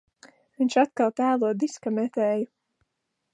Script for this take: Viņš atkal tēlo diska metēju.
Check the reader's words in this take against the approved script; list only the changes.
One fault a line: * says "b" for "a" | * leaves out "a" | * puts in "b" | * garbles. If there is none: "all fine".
all fine